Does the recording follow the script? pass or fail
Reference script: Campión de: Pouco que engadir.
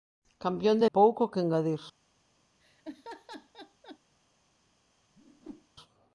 pass